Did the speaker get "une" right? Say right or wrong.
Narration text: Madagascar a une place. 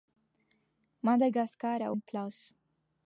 right